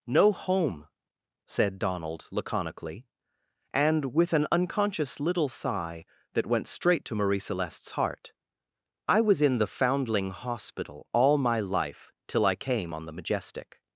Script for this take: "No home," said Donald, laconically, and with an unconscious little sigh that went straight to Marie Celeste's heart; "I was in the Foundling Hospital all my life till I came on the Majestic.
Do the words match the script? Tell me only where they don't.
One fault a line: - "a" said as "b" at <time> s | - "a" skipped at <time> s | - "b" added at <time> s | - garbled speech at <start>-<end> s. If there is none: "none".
none